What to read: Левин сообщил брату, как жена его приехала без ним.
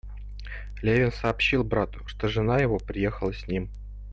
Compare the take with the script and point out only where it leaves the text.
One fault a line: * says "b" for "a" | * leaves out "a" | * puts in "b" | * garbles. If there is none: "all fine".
* says "что" for "как"
* says "с" for "без"